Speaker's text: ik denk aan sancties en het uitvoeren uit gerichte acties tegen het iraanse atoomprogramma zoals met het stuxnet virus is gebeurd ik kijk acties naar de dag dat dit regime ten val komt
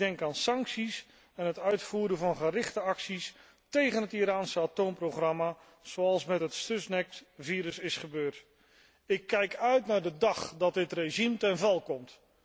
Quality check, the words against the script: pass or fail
fail